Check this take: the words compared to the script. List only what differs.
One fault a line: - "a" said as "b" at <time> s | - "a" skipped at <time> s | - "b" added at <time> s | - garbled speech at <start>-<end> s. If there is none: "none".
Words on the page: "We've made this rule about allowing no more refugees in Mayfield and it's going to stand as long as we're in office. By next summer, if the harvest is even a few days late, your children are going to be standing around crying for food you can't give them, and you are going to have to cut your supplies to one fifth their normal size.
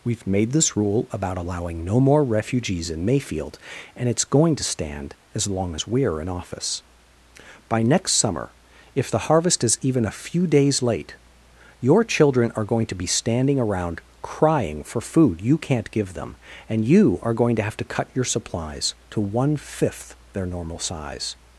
none